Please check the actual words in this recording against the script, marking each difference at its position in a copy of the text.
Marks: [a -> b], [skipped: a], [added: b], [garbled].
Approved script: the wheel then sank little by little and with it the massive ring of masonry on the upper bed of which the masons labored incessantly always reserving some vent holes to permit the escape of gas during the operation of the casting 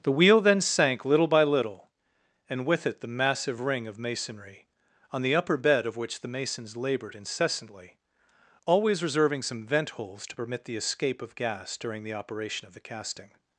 the wheel then sank little by little and with it the massive ring of masonry on the upper bed of which the masons labored incessantly always reserving some vent holes to permit the escape of gas during the operation of the casting